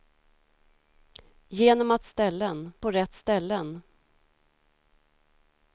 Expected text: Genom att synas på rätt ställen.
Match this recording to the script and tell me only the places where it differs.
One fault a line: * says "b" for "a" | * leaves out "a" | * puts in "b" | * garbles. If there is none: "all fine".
* says "ställen" for "synas"